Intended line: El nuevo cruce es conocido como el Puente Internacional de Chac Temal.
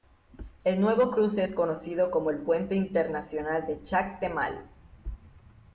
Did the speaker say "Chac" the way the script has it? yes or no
yes